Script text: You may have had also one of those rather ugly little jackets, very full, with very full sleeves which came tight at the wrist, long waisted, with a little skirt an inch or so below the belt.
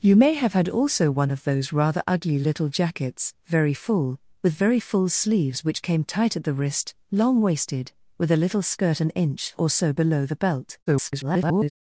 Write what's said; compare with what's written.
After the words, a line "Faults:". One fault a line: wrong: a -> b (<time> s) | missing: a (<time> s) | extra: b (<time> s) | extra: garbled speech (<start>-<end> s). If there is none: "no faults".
You may have had also one of those rather ugly little jackets, very full, with very full sleeves which came tight at the wrist, long waisted, with a little skirt an inch or so below the belt. [garbled]
Faults:
extra: garbled speech (10.9-11.7 s)